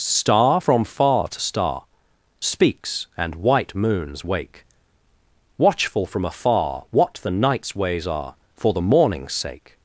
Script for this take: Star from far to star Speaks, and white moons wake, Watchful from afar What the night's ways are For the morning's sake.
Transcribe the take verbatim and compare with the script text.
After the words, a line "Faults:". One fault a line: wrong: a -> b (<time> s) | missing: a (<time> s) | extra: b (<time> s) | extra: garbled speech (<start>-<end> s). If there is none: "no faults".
Star from far to star Speaks, and white moons wake, Watchful from afar What the night's ways are For the morning's sake.
Faults:
no faults